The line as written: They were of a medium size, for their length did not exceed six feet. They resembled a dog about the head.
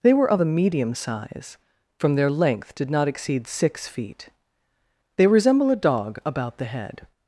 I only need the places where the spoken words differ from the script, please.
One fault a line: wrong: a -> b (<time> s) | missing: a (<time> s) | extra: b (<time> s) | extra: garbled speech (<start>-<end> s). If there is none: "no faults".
wrong: for -> from (2.0 s)
wrong: resembled -> resemble (5.3 s)